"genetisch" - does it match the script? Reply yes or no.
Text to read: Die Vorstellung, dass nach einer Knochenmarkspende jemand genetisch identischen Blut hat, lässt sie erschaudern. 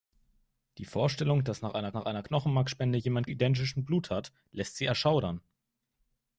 no